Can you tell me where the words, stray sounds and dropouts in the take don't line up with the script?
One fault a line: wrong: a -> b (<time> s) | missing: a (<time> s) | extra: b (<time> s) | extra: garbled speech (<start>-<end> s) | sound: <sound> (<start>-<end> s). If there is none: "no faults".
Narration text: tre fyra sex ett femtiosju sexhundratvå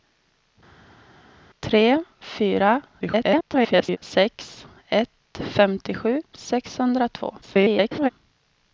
extra: garbled speech (3.0-4.0 s)
extra: garbled speech (7.4-8.1 s)